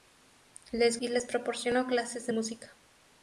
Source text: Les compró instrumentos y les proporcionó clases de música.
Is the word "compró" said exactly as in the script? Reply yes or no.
no